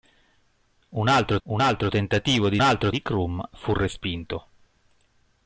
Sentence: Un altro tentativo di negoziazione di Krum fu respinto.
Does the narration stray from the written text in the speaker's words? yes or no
yes